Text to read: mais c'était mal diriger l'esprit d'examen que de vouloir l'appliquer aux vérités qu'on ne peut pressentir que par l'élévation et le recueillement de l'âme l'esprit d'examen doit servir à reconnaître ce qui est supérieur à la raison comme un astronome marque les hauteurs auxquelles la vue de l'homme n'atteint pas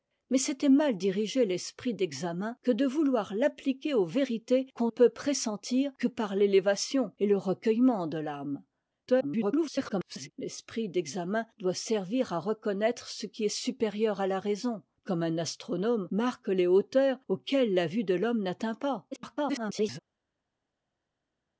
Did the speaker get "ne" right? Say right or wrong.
wrong